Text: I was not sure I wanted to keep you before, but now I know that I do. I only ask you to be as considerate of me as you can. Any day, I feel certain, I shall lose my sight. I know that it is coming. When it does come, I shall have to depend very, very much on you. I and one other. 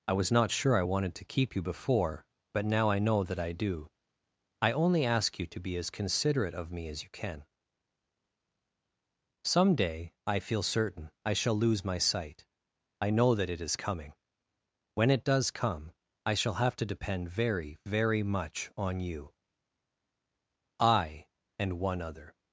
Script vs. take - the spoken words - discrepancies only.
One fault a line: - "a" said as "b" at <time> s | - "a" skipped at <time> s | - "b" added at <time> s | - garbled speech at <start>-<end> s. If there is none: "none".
- "Any" said as "Some" at 9.4 s